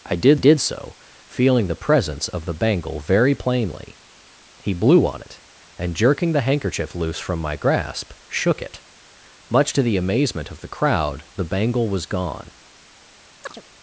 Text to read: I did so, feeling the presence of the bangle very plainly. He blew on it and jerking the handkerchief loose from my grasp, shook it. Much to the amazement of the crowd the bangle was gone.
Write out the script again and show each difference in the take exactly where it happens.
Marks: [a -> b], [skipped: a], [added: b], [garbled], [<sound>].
I did [added: did] so, feeling the presence of the bangle very plainly. He blew on it and jerking the handkerchief loose from my grasp, shook it. Much to the amazement of the crowd the bangle was gone. [chirp]